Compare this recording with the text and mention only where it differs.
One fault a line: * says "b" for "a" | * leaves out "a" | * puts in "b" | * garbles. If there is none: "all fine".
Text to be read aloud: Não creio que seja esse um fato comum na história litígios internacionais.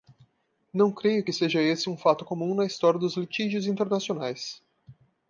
* puts in "dos"